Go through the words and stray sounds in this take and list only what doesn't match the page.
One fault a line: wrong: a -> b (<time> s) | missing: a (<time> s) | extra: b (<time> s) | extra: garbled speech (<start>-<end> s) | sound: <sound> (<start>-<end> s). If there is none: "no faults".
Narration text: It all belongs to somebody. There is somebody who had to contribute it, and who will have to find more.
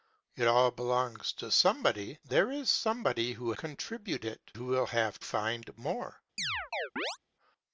missing: had to (3.5 s)
missing: and (4.5 s)
missing: to (5.2 s)
sound: chirp (6.4-7.2 s)